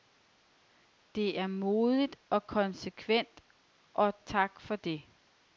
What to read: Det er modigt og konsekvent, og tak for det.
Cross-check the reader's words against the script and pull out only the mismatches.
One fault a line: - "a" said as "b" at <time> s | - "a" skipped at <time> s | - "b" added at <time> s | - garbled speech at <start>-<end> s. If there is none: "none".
none